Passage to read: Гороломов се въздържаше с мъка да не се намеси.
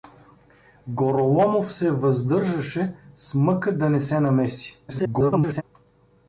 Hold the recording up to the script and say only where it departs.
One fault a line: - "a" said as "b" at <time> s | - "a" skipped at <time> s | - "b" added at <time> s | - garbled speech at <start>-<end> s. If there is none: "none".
- garbled speech at 4.9-5.6 s